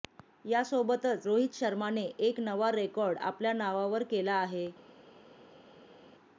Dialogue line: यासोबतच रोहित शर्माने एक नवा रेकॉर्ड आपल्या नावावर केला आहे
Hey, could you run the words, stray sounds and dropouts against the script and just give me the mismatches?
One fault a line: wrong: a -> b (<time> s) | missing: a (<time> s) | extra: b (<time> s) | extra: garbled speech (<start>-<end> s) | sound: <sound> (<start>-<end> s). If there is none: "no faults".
no faults